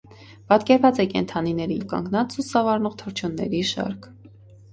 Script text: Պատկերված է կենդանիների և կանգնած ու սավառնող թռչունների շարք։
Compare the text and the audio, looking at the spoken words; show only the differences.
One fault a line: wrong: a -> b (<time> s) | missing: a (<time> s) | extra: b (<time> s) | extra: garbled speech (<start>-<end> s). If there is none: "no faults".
no faults